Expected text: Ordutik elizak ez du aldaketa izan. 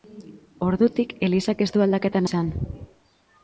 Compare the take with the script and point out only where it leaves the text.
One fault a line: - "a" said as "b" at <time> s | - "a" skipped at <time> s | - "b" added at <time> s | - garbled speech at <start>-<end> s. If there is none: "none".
none